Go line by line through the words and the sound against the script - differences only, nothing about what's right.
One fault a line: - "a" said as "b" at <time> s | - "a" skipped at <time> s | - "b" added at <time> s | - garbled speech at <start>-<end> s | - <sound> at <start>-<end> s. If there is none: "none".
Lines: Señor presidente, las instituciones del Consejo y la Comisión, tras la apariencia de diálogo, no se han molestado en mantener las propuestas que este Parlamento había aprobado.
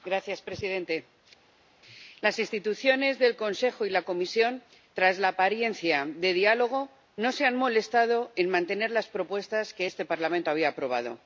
none